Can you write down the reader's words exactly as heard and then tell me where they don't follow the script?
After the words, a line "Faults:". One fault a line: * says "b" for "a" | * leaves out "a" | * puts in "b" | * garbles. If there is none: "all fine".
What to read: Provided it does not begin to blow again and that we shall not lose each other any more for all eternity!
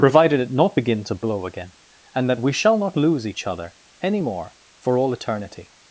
Provided it not begin to blow again and that we shall not lose each other any more for all eternity!
Faults:
* leaves out "does"